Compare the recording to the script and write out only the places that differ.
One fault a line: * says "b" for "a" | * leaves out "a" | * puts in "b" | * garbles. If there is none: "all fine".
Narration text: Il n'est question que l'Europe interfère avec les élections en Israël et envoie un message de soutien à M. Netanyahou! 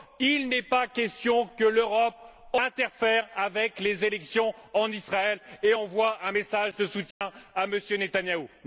* puts in "pas"